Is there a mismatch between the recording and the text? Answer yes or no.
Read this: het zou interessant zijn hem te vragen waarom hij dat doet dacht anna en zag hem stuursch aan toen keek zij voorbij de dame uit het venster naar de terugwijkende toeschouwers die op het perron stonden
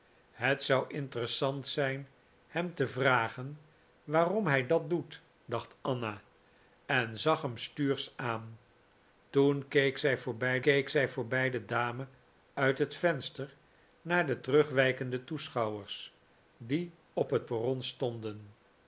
yes